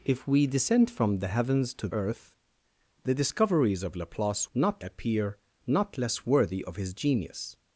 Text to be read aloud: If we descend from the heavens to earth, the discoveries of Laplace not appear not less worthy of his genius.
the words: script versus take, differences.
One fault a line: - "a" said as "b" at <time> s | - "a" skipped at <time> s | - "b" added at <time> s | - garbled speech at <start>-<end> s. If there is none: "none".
none